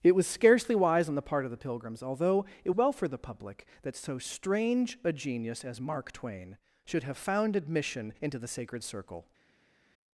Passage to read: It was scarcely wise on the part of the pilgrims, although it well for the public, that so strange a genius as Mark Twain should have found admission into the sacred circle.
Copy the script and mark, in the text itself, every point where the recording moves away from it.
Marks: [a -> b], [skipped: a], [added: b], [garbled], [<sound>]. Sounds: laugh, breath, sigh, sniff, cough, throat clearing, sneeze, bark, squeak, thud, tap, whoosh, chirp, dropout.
It was scarcely wise on the part of the pilgrims, although it well for the public, that so strange a genius as Mark Twain should have found admission into the sacred circle.